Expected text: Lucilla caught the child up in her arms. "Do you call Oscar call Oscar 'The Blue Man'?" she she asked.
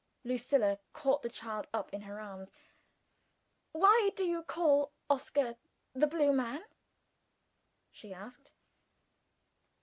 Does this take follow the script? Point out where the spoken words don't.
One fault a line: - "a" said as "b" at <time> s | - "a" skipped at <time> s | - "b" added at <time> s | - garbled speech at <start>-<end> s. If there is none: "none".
- "Why" added at 3.7 s
- "call Oscar" skipped at 5.6 s
- "she" skipped at 8.1 s